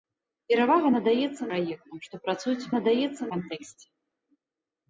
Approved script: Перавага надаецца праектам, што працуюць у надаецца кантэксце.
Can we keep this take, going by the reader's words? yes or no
yes